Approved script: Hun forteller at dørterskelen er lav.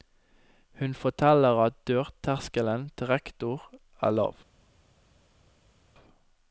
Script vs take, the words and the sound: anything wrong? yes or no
yes